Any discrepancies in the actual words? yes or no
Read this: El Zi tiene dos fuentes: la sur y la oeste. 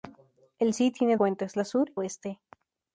yes